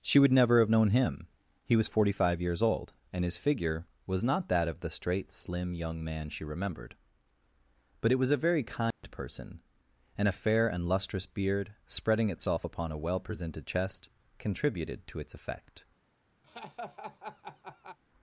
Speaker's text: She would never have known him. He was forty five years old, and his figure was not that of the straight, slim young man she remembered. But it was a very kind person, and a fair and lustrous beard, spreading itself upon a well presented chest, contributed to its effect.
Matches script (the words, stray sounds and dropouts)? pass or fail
fail